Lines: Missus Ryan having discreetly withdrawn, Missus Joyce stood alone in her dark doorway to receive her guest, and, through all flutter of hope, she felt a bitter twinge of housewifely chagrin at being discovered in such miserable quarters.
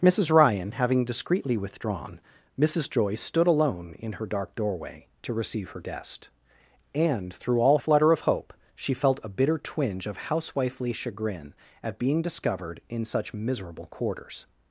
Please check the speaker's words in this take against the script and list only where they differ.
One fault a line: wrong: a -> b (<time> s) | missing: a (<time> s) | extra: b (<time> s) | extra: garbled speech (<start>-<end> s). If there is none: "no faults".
no faults